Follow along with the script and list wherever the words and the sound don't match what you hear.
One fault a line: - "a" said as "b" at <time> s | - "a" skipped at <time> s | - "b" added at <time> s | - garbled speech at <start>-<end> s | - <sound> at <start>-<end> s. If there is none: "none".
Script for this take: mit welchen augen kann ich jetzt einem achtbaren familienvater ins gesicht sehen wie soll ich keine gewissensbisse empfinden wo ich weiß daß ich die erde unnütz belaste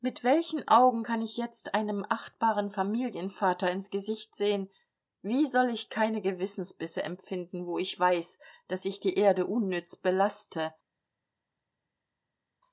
none